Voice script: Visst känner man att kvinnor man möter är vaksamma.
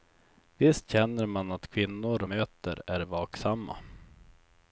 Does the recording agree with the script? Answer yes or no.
no